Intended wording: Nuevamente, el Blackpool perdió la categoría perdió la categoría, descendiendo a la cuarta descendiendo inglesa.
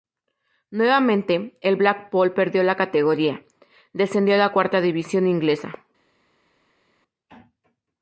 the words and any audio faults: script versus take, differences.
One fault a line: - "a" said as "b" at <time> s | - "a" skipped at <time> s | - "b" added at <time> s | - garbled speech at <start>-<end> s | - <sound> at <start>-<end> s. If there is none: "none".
- "perdió la categoría" skipped at 3.4 s
- "descendiendo" said as "división" at 4.8 s